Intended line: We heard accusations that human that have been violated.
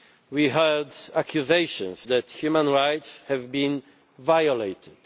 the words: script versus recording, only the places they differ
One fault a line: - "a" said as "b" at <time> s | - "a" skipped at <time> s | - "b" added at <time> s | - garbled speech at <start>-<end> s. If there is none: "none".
- "that" said as "rights" at 2.7 s